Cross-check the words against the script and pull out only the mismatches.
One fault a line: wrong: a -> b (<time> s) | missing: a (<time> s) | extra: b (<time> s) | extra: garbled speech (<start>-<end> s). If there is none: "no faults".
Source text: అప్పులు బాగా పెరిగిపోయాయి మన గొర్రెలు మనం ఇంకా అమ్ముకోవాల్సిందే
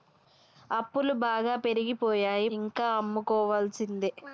missing: మన గొర్రెలు మనం (2.5 s)